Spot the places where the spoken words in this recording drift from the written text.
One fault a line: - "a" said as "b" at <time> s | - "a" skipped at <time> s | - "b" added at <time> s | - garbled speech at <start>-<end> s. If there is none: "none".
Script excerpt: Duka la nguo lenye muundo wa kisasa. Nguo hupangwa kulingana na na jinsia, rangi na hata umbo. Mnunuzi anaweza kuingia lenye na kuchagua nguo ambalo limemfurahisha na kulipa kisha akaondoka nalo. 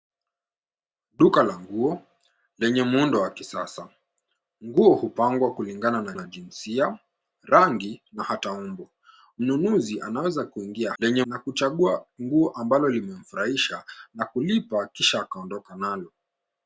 none